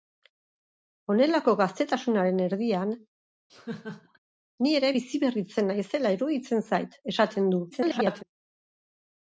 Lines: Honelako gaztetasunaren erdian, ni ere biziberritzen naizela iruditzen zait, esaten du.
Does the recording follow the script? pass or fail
fail